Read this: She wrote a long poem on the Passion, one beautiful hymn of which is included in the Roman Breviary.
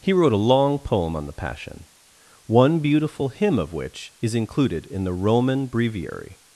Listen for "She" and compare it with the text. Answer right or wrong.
wrong